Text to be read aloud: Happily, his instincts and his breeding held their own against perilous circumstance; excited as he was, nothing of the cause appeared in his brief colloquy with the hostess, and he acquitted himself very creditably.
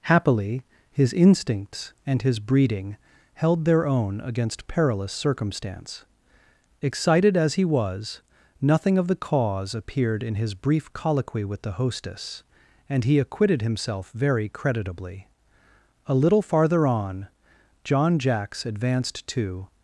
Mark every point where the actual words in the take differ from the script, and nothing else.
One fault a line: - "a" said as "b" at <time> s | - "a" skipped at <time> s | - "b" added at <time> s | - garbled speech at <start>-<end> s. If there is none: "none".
- "A little farther on John Jacks advanced to" added at 16.1 s